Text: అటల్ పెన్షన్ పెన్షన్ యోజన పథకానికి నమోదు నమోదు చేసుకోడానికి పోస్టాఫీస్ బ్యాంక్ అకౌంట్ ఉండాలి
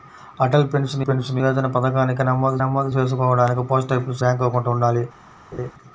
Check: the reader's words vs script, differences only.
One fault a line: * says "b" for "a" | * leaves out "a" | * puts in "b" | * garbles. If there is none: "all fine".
all fine